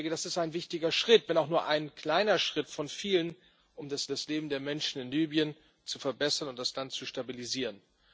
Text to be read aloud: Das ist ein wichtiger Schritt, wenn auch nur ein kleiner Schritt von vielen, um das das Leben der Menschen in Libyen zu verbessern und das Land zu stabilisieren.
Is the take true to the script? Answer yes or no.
yes